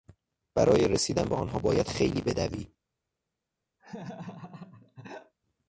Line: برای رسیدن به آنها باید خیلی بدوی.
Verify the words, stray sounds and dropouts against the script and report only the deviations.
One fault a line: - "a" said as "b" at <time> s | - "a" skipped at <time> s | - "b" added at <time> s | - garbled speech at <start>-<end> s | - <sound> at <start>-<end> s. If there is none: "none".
- laugh at 3.8-5.3 s